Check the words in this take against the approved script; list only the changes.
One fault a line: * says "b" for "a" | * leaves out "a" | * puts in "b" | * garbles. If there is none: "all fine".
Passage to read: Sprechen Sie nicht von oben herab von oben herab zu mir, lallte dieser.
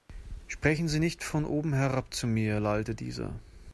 * leaves out "von oben herab"